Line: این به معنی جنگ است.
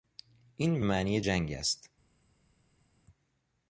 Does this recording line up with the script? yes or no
yes